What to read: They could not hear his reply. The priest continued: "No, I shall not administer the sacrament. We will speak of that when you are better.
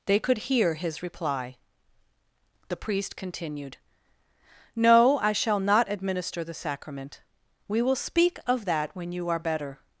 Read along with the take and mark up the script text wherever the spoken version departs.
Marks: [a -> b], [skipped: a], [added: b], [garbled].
They could [skipped: not] hear his reply. The priest continued: "No, I shall not administer the sacrament. We will speak of that when you are better.